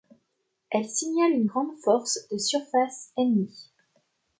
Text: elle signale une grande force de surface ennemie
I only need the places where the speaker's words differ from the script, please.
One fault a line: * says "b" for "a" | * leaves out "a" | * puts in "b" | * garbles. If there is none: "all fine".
all fine